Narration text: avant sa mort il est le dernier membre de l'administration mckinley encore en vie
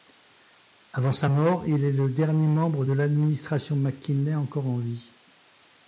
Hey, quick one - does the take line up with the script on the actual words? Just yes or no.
yes